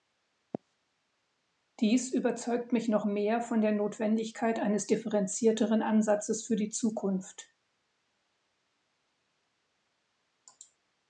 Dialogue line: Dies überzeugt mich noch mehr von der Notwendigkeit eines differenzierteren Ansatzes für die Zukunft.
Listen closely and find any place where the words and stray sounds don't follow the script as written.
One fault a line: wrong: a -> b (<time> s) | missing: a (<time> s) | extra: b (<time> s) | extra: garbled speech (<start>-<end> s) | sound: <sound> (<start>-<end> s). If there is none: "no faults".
no faults